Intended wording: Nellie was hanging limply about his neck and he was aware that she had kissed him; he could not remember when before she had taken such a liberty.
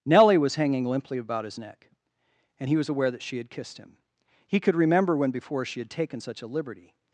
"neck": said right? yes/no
yes